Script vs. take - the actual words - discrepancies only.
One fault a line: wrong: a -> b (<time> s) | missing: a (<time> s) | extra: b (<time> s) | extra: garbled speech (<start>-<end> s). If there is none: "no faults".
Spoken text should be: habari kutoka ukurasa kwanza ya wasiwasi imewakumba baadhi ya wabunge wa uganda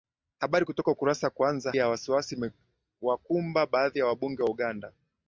no faults